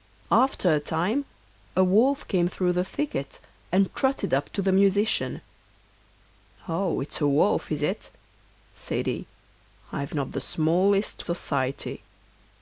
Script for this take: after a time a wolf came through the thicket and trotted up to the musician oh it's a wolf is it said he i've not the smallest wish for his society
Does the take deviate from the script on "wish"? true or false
true